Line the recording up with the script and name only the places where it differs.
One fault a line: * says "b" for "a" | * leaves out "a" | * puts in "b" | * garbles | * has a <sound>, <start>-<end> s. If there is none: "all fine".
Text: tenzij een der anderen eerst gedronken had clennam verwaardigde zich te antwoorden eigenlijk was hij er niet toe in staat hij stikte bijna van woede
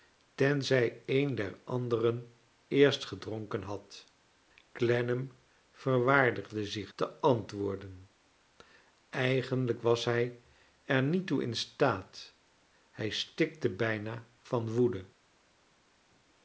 all fine